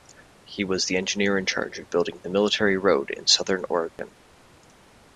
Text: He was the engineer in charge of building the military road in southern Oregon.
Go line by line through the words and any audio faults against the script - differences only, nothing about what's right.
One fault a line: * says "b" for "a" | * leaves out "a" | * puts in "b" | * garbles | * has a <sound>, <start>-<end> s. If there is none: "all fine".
* has a dropout, 3.9-4.0 s